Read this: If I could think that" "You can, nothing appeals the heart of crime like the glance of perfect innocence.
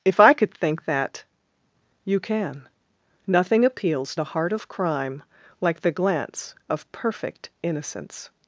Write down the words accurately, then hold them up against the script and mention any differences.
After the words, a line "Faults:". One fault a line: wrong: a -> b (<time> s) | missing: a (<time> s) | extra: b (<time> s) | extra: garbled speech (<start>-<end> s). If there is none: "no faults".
If I could think that" "You can, nothing appeals the heart of crime like the glance of perfect innocence.
Faults:
no faults